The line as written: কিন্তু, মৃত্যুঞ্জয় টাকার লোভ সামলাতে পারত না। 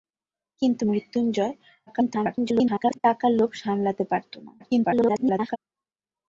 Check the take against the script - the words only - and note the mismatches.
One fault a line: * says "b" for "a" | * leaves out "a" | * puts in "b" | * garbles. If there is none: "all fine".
* garbles
* garbles